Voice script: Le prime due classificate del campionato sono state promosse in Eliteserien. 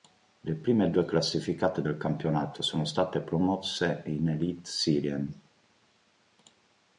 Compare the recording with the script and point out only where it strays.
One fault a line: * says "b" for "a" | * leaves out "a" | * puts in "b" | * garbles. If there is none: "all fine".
all fine